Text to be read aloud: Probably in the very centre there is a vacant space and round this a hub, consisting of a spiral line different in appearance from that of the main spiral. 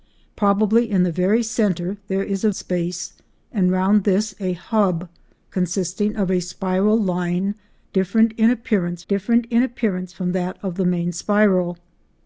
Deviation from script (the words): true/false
true